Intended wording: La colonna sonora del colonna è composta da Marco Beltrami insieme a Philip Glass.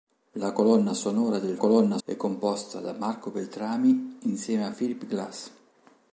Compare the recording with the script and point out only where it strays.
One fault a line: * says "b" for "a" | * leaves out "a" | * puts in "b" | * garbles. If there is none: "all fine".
all fine